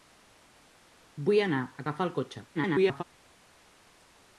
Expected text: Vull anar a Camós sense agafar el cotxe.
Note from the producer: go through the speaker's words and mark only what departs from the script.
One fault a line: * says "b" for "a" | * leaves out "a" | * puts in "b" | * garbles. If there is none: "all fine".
* leaves out "Camós sense"
* garbles